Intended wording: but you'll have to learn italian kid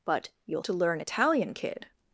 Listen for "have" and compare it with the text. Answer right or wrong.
wrong